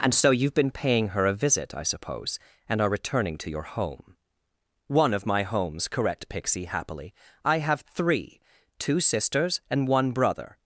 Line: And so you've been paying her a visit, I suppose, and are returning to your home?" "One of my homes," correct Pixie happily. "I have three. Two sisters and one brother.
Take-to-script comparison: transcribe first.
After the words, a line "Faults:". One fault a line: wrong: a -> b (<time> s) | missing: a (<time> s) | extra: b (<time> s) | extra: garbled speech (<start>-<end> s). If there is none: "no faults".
And so you've been paying her a visit, I suppose, and are returning to your home?" "One of my homes," correct Pixie happily. "I have three. Two sisters and one brother.
Faults:
no faults